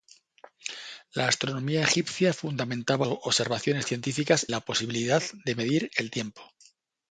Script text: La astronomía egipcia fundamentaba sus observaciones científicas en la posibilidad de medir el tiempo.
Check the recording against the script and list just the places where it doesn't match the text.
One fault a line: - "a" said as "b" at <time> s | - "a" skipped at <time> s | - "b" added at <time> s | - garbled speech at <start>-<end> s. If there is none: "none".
- "sus" skipped at 3.1 s
- "en" skipped at 4.5 s